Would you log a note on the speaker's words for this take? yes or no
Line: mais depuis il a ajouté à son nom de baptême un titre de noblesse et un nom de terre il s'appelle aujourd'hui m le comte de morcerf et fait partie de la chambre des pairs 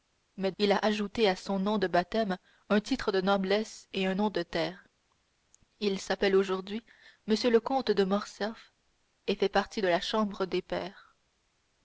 yes